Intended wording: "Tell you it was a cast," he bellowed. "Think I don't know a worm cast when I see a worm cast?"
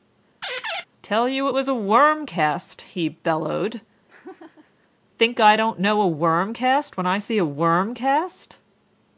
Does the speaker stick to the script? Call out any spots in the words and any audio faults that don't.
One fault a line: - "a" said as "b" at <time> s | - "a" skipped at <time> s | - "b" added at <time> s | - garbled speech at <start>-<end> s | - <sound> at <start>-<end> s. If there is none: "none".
- squeak at 0.4-0.9 s
- "worm" added at 1.7 s
- laugh at 4.1-4.9 s